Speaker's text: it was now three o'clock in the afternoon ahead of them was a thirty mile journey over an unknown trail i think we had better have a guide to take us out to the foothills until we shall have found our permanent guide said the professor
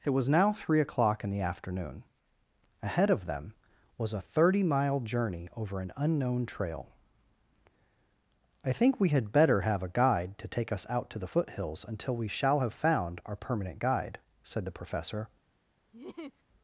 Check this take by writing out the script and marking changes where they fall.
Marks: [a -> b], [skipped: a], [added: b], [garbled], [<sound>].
it was now three o'clock in the afternoon ahead of them was a thirty mile journey over an unknown trail i think we had better have a guide to take us out to the foothills until we shall have found our permanent guide said the professor [laugh]